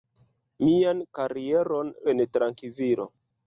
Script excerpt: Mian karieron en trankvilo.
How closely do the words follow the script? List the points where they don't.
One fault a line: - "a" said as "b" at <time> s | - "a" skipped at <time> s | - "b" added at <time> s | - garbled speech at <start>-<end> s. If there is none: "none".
none